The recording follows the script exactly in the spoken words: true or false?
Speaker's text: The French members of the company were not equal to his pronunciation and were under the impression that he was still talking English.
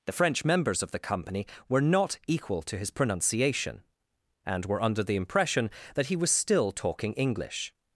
true